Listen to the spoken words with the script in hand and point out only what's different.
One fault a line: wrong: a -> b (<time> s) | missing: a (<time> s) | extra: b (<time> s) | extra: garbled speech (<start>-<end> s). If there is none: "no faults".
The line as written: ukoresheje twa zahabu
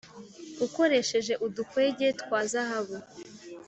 extra: udukwege (1.4 s)